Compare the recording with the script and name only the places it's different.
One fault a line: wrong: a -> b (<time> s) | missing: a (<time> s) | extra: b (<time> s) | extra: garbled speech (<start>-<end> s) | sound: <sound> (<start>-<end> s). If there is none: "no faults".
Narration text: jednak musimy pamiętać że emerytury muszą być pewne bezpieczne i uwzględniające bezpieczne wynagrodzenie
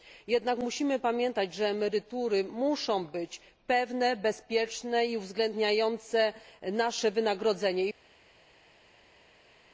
wrong: bezpieczne -> nasze (6.7 s)